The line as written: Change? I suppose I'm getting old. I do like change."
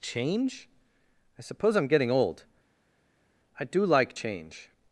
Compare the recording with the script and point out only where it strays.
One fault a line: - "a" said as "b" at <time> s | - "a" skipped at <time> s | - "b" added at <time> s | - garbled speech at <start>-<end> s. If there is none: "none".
none